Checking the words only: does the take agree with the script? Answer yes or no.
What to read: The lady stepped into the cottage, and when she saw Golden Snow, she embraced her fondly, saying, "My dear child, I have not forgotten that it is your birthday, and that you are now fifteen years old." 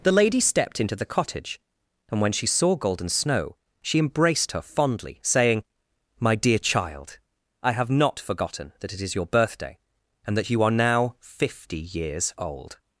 no